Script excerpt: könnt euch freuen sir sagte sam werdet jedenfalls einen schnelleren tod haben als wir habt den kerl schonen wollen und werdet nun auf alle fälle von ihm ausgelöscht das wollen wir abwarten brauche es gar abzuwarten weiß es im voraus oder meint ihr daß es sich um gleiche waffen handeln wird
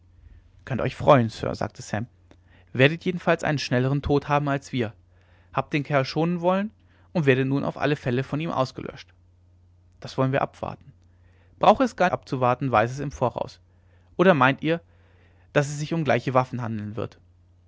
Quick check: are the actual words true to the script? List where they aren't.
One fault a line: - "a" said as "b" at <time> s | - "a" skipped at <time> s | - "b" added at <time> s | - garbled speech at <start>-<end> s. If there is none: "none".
none